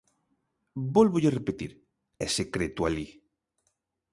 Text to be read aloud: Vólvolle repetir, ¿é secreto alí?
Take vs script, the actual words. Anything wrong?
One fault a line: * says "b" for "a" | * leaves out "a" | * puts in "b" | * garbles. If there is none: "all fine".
all fine